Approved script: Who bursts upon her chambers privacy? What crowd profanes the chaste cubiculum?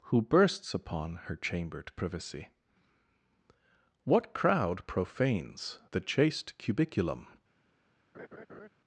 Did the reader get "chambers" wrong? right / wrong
wrong